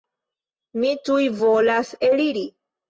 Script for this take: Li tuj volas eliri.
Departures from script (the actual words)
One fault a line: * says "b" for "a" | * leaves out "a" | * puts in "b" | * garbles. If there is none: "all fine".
* says "Mi" for "Li"